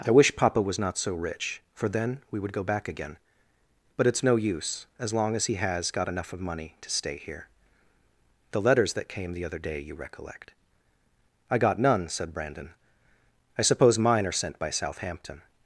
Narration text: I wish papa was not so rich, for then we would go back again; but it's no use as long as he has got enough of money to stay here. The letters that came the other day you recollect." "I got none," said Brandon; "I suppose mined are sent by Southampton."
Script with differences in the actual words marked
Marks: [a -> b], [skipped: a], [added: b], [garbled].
I wish papa was not so rich, for then we would go back again; but it's no use as long as he has got enough of money to stay here. The letters that came the other day you recollect." "I got none," said Brandon; "I suppose [mined -> mine] are sent by Southampton."